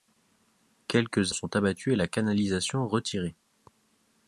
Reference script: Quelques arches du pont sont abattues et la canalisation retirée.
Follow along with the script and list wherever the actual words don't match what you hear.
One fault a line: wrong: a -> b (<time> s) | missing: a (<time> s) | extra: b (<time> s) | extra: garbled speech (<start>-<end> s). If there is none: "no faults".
missing: arches du pont (1.4 s)